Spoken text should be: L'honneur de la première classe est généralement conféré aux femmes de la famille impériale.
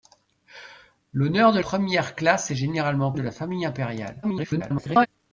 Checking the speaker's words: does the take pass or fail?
fail